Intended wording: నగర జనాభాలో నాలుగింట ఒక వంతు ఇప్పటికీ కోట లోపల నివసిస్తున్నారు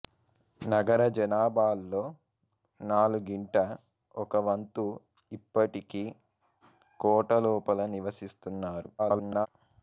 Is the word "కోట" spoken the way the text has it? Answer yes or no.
yes